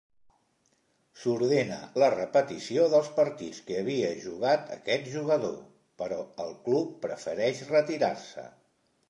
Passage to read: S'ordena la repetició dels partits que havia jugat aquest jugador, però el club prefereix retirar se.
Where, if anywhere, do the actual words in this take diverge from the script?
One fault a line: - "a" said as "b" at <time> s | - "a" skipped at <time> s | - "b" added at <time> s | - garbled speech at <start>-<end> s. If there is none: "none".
none